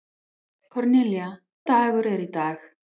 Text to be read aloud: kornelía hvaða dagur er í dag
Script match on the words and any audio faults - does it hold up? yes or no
no